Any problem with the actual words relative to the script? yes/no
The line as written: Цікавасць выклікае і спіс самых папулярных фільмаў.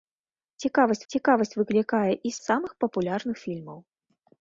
yes